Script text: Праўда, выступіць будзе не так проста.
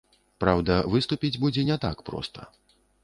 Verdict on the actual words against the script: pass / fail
pass